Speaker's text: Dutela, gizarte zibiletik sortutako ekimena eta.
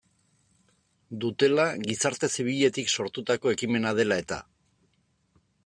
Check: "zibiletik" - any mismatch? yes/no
no